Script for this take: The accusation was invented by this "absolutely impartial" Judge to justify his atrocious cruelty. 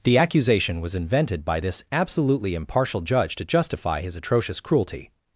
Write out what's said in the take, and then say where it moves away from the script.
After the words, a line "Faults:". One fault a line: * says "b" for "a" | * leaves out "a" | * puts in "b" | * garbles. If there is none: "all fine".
The accusation was invented by this "absolutely impartial" Judge to justify his atrocious cruelty.
Faults:
all fine